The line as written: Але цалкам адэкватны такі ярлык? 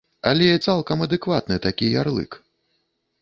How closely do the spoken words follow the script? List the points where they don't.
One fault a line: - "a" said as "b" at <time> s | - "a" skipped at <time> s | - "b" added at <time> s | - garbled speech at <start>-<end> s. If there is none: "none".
none